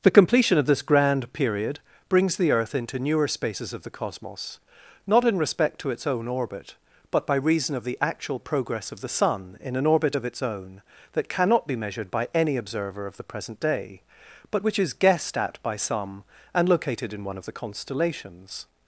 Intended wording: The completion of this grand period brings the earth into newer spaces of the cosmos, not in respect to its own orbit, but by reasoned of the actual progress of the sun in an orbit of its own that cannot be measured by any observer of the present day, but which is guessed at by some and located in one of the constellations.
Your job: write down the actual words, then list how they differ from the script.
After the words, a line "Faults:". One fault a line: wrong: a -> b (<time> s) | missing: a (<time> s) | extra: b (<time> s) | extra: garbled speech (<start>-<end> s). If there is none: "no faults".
The completion of this grand period brings the earth into newer spaces of the cosmos, not in respect to its own orbit, but by reason of the actual progress of the sun in an orbit of its own that cannot be measured by any observer of the present day, but which is guessed at by some and located in one of the constellations.
Faults:
wrong: reasoned -> reason (7.3 s)